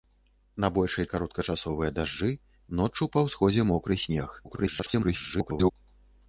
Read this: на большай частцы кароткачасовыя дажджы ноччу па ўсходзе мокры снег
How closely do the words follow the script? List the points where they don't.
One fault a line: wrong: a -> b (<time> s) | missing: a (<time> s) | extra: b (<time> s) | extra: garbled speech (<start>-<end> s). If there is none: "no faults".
missing: частцы (1.1 s)
extra: garbled speech (4.4-5.7 s)